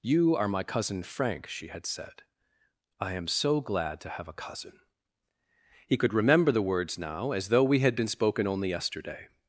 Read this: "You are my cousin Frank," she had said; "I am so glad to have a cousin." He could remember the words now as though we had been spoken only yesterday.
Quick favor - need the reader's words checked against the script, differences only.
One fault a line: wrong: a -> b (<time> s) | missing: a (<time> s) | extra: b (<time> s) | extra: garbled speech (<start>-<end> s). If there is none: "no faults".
no faults